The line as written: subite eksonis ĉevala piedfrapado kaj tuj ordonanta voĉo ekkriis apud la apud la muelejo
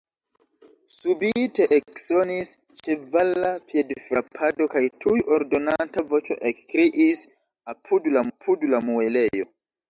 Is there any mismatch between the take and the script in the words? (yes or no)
no